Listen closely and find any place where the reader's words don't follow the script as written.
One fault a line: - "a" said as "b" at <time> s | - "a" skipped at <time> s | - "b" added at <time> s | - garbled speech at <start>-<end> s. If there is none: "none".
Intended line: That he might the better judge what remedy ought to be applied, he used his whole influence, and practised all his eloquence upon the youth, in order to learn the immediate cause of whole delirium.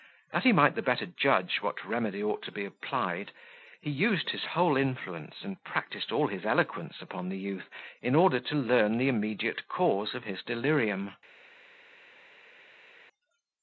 - "whole" said as "his" at 10.2 s